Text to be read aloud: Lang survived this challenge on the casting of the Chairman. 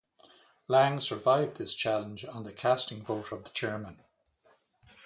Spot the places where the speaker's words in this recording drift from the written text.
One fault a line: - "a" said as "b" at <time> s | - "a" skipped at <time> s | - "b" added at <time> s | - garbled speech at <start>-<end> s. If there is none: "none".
- "vote" added at 3.0 s